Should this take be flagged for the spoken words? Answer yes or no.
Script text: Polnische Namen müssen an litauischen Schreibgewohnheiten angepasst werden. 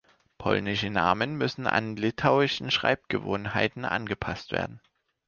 no